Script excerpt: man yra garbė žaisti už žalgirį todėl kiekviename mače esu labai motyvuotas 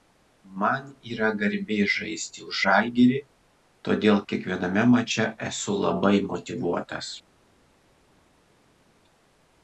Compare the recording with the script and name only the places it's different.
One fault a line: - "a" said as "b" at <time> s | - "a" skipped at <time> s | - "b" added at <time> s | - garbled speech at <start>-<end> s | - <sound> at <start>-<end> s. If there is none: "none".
none